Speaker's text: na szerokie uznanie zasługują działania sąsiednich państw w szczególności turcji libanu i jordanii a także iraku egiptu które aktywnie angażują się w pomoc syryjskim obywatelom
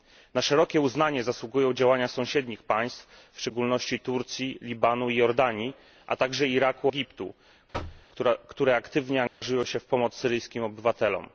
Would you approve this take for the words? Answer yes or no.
yes